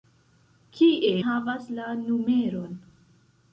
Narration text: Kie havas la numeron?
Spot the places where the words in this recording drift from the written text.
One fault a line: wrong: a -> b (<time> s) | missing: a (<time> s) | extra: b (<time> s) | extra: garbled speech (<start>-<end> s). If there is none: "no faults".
no faults